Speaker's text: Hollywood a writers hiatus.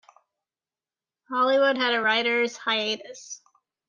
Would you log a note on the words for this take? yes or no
yes